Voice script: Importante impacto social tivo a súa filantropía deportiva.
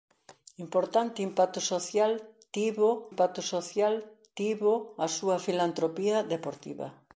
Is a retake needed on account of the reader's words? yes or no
yes